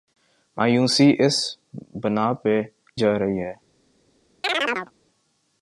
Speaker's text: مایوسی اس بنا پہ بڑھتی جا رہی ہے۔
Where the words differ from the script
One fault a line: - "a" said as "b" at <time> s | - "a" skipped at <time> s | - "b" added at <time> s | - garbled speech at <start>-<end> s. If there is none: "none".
- "بڑھتی" skipped at 2.6 s